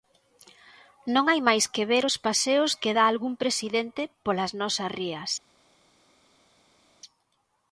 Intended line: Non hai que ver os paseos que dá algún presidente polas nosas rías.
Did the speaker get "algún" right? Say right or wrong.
right